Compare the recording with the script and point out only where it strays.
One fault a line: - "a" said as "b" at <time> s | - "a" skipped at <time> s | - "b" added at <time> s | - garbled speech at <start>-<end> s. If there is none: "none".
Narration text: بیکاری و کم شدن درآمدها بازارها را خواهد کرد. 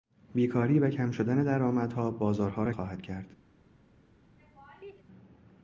none